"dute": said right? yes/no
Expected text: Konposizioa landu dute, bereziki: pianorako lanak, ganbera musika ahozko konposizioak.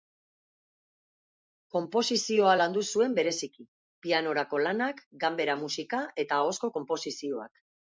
no